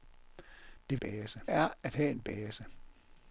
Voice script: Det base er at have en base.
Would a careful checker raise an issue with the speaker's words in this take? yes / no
no